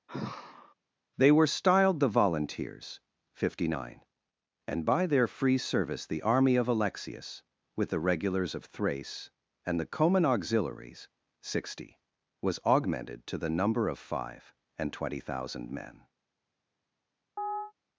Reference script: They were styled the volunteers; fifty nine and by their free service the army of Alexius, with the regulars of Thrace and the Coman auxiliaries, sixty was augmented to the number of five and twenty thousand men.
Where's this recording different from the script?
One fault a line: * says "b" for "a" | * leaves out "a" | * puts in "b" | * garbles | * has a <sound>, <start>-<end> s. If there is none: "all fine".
* has a sigh, 0.1-0.7 s
* has a chirp, 17.4-17.7 s